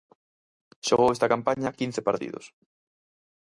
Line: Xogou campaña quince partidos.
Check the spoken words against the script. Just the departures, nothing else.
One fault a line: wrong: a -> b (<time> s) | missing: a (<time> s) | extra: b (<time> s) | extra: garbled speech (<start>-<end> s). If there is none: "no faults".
extra: esta (1.1 s)